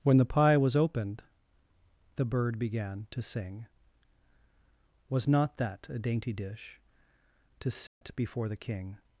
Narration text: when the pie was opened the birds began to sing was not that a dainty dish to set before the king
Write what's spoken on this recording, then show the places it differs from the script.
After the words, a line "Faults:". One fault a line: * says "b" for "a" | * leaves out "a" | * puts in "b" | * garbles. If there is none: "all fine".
when the pie was opened the bird began to sing was not that a dainty dish to set before the king
Faults:
* says "bird" for "birds"